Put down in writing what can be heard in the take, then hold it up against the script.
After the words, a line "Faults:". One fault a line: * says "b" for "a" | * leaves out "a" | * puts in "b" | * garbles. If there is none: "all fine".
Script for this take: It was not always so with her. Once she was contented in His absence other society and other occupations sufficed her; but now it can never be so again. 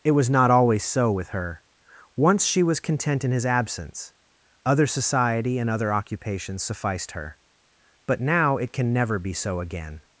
It was not always so with her. Once she was content in His absence other society and other occupations sufficed her; but now it can never be so again.
Faults:
* says "content" for "contented"